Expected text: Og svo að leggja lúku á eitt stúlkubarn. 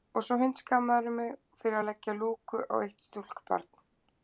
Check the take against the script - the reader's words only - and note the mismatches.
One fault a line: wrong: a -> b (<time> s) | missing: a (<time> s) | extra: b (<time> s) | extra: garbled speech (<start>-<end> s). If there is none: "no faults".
extra: hundskammarðu mig fyrir (0.4 s)